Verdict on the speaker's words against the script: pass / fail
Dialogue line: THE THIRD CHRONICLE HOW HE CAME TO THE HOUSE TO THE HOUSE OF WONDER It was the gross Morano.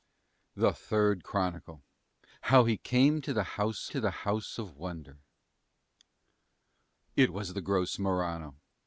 pass